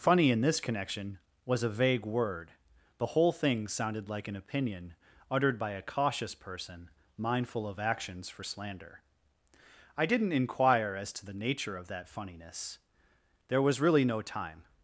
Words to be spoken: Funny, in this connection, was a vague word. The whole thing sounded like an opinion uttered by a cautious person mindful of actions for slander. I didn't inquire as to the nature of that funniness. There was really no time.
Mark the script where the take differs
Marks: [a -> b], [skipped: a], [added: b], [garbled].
Funny, in this connection, was a vague word. The whole thing sounded like an opinion uttered by a cautious person mindful of actions for slander. I didn't inquire as to the nature of that funniness. There was really no time.